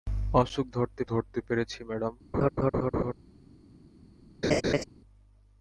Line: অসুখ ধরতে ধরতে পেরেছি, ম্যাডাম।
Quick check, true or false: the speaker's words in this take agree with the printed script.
true